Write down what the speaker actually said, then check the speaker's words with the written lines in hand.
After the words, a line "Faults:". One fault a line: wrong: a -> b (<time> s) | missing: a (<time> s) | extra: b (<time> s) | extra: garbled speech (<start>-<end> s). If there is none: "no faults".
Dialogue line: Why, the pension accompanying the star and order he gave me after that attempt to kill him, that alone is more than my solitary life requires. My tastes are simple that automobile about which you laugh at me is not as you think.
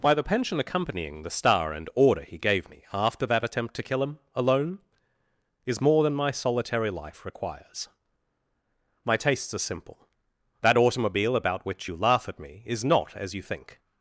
Why, the pension accompanying the star and order he gave me after that attempt to kill him, alone is more than my solitary life requires. My tastes are simple that automobile about which you laugh at me is not as you think.
Faults:
missing: that (4.2 s)